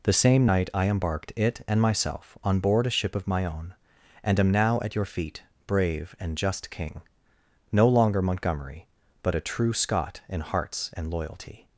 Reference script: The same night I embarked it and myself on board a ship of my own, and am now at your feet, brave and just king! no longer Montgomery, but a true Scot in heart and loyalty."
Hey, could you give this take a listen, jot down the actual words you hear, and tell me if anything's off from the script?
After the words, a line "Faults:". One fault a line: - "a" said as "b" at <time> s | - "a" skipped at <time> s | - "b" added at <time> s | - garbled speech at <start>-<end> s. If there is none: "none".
The same night I embarked it and myself on board a ship of my own, and am now at your feet, brave and just king! no longer Montgomery, but a true Scot in hearts and loyalty."
Faults:
- "heart" said as "hearts" at 10.4 s